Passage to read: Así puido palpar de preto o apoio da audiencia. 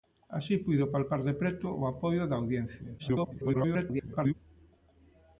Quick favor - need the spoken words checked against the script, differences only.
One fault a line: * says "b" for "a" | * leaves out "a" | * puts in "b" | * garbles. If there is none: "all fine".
* garbles